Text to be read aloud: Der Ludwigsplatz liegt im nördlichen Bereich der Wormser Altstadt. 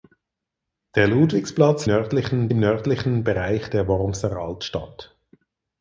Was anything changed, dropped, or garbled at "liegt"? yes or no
yes